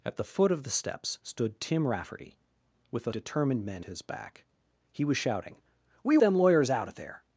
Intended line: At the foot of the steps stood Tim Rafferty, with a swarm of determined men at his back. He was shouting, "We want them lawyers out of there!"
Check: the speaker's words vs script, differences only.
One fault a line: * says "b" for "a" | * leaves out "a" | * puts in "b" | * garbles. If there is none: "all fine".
* leaves out "swarm of"
* leaves out "at"
* leaves out "want"